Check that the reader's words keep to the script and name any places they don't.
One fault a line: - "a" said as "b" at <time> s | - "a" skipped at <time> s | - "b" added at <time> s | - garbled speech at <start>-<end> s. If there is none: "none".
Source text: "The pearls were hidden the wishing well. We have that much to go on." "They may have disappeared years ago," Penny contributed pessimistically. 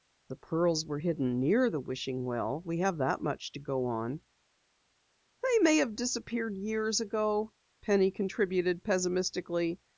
- "near" added at 1.4 s